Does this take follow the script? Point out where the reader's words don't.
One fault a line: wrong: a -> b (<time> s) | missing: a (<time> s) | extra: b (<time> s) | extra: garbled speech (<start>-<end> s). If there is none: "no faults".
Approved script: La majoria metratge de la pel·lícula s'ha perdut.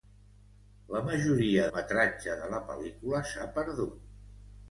no faults